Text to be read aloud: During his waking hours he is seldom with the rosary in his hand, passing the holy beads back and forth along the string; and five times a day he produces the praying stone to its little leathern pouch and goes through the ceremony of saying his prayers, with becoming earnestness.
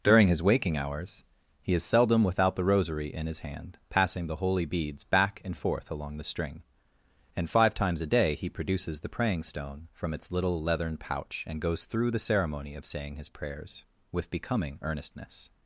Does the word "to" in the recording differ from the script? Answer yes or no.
yes